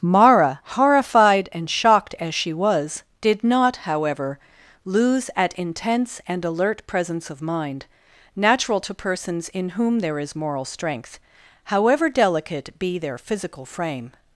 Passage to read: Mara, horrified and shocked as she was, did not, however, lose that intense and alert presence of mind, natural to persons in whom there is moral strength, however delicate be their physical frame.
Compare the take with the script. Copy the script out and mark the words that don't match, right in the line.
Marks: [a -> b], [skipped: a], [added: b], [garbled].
Mara, horrified and shocked as she was, did not, however, lose [that -> at] intense and alert presence of mind, natural to persons in whom there is moral strength, however delicate be their physical frame.